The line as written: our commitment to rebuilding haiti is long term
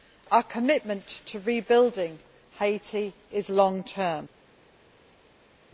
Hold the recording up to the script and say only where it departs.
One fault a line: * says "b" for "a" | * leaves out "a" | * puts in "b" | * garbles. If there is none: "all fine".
all fine